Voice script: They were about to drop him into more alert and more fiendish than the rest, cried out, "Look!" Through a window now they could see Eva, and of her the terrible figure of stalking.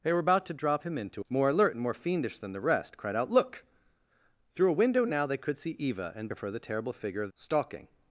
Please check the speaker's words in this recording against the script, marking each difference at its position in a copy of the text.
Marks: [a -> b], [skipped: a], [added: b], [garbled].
They were about to drop him into more alert and more fiendish than the rest, cried out, "Look!" Through a window now they could see Eva, and of her the terrible figure of stalking.